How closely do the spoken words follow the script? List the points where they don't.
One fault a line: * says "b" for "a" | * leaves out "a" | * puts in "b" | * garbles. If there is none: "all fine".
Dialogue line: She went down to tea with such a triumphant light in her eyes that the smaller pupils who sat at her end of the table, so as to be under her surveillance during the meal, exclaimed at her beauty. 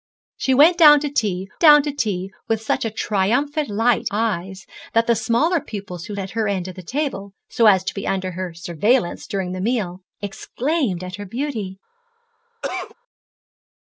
* puts in "down to tea"
* leaves out "in her"
* leaves out "sat"